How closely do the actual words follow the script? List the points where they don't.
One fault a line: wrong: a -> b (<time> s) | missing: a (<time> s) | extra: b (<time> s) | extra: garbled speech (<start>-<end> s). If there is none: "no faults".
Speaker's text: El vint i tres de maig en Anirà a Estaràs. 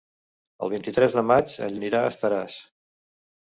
no faults